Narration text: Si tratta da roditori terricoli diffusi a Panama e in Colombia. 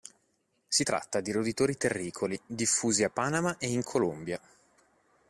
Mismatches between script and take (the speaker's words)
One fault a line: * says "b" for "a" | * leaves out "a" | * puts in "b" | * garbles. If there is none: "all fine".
* says "di" for "da"